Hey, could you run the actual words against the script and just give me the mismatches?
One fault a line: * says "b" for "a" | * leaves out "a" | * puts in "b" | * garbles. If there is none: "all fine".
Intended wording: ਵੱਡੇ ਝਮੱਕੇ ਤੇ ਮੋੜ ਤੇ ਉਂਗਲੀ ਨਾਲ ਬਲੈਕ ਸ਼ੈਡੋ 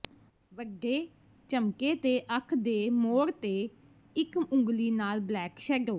* puts in "ਅੱਖ ਦੇ"
* puts in "ਇੱਕ"